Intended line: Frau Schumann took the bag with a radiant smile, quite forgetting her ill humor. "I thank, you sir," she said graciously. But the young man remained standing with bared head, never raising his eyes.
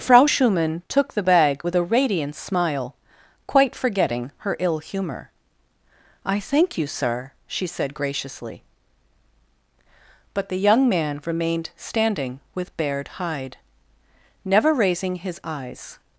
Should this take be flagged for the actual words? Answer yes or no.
yes